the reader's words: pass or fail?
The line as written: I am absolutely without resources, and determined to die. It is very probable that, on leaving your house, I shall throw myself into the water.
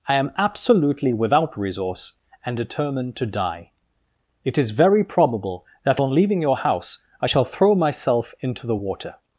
fail